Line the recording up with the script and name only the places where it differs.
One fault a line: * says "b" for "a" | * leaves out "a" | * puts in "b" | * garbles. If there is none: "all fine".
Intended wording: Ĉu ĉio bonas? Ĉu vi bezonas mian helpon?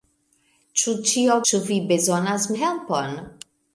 * leaves out "bonas"
* leaves out "mian"